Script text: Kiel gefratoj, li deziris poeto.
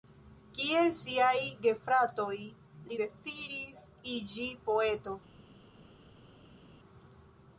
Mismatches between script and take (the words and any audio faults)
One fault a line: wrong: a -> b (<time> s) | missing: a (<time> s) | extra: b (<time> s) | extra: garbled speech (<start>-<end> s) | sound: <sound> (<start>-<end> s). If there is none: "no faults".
extra: siaj (1.0 s)
extra: iĝi (4.2 s)